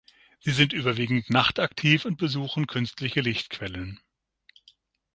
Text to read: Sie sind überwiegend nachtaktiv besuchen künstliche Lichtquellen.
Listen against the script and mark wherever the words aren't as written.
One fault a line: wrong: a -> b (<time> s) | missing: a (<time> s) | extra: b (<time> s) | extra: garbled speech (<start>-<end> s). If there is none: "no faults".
extra: und (2.0 s)